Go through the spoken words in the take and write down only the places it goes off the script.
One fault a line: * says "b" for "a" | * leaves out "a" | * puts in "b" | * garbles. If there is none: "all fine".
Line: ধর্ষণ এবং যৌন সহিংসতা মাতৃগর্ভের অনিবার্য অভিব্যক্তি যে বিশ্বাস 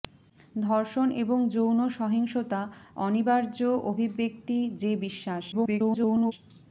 * leaves out "মাতৃগর্ভের"
* garbles